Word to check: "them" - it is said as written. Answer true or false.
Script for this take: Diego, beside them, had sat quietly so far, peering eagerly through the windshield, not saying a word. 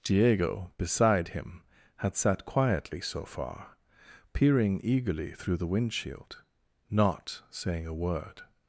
false